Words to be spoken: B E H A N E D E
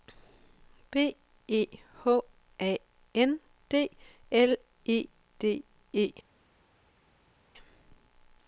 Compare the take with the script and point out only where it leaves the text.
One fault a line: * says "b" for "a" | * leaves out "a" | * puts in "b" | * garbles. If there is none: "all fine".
* puts in "D L"